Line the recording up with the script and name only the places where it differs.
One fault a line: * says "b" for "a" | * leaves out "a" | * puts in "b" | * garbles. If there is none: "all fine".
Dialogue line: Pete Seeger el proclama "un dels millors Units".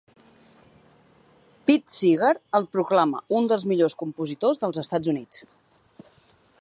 * puts in "compositors dels Estats"